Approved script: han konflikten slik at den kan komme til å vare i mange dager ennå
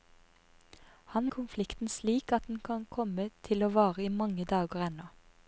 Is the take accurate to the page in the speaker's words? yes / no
yes